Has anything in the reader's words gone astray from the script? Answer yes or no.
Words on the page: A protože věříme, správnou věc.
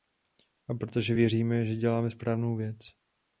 yes